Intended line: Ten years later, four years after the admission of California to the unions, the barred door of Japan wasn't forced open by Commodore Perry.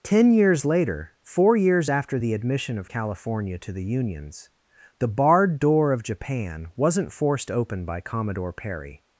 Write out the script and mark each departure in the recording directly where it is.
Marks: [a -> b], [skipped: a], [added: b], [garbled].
Ten years later, four years after the admission of California to the unions, the barred door of Japan wasn't forced open by Commodore Perry.